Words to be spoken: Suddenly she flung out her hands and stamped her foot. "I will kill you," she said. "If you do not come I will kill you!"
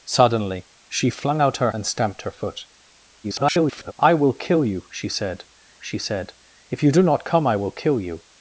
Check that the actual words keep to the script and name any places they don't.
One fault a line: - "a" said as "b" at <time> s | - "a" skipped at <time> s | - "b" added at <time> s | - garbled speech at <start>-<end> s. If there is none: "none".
- "hands" skipped at 1.7 s
- garbled speech at 3.2-3.9 s
- "she said" added at 5.8 s